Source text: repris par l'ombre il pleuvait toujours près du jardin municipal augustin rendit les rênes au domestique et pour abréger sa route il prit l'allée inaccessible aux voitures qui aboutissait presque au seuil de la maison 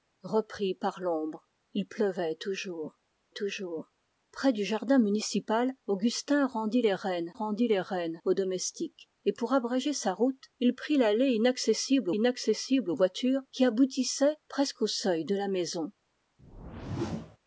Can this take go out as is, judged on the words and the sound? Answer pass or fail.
fail